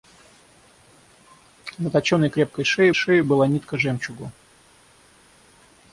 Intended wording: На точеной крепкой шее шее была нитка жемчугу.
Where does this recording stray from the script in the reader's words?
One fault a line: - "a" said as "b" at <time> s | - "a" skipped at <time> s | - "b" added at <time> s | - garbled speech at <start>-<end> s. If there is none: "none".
none